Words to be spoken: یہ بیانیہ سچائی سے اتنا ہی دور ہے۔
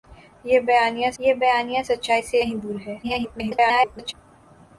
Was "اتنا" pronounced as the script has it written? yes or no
no